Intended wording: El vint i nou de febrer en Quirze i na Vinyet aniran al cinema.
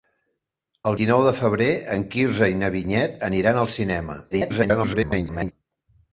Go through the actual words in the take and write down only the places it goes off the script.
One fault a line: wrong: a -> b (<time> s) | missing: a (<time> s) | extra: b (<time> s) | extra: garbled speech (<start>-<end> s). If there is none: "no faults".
missing: vint (1.0 s)
extra: garbled speech (4.3-5.5 s)